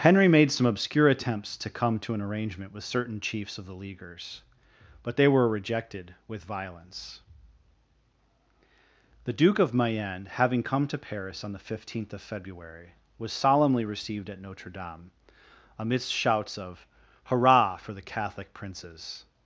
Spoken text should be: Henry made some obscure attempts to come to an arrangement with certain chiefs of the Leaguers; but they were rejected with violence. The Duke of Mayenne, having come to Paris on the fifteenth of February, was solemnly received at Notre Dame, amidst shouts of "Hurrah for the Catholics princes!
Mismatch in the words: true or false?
true